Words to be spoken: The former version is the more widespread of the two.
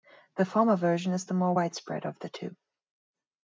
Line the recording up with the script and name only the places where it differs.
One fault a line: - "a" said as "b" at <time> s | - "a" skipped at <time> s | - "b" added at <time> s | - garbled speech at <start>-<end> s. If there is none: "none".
none